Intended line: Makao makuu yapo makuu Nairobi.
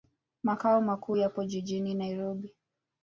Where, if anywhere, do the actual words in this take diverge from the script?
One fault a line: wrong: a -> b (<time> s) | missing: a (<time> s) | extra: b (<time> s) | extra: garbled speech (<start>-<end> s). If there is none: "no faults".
wrong: makuu -> jijini (1.4 s)